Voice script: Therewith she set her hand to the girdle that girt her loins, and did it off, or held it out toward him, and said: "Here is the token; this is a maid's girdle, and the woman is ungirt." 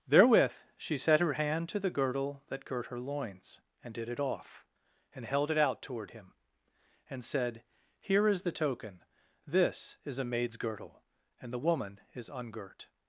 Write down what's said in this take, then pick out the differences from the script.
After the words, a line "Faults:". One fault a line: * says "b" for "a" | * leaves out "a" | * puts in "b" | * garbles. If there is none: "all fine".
Therewith she set her hand to the girdle that girt her loins, and did it off, and held it out toward him, and said: "Here is the token; this is a maid's girdle, and the woman is ungirt."
Faults:
* says "and" for "or"